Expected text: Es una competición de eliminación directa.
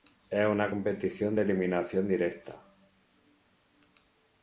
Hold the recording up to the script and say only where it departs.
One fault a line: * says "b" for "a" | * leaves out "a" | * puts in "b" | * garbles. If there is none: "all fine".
all fine